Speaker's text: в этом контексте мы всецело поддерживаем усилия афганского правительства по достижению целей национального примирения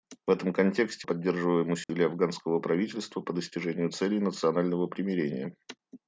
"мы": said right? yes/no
no